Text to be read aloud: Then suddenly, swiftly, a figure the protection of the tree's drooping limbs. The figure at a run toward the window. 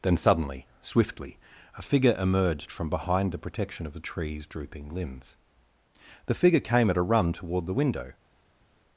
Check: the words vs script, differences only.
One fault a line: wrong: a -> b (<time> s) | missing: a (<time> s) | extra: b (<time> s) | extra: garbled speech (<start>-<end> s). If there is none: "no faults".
extra: emerged from behind (2.2 s)
extra: came (6.6 s)